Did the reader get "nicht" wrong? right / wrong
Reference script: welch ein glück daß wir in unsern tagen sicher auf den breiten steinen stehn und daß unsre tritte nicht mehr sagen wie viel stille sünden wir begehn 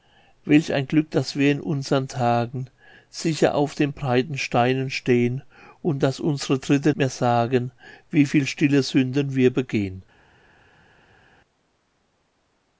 wrong